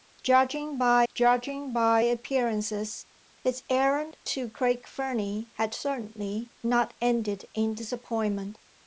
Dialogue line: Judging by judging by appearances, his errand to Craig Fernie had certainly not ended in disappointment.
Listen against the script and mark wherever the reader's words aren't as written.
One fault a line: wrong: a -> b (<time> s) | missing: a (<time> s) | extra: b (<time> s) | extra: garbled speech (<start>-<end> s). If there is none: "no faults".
no faults